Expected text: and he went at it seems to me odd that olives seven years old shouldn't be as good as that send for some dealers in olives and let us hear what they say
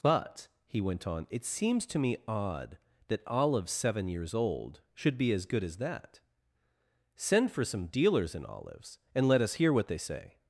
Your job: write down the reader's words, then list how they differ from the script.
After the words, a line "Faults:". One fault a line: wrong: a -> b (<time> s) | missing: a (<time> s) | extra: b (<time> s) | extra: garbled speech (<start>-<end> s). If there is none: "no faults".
but he went on it seems to me odd that olives seven years old should be as good as that send for some dealers in olives and let us hear what they say
Faults:
wrong: and -> but (0.0 s)
wrong: at -> on (1.1 s)
wrong: shouldn't -> should (4.9 s)